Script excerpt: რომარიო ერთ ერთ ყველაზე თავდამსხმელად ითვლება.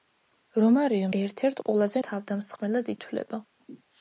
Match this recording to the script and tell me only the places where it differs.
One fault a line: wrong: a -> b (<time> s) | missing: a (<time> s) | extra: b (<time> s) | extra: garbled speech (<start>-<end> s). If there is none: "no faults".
no faults